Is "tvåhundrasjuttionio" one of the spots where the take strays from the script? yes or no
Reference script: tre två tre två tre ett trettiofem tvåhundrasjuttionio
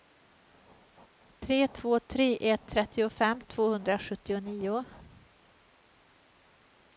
no